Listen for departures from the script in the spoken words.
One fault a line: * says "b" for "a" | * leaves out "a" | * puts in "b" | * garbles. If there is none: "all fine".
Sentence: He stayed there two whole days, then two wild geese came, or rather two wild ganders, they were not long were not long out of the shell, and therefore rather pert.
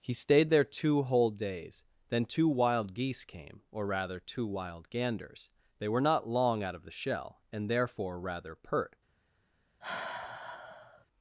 * leaves out "were not long"